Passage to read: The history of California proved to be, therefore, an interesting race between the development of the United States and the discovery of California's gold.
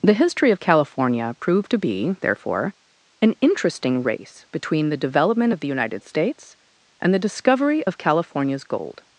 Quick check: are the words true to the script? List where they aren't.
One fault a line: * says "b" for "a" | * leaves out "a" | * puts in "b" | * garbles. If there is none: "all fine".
all fine